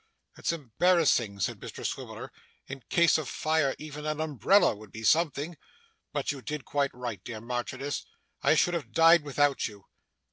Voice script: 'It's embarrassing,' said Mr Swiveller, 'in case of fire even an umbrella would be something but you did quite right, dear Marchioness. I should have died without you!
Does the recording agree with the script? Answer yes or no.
yes